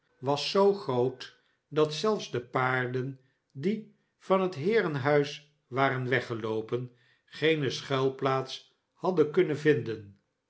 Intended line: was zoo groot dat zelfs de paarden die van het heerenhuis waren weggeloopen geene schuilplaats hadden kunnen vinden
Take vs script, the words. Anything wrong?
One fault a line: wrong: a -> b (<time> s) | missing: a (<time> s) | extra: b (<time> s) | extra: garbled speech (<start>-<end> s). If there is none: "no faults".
no faults